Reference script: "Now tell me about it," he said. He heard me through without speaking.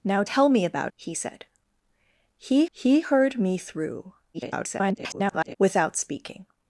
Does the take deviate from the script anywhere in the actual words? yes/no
yes